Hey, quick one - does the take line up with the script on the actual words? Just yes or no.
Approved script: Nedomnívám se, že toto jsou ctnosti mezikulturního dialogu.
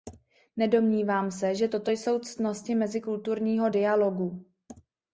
yes